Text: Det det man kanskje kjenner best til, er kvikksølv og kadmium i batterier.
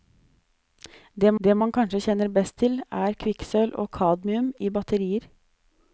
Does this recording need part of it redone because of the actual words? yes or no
no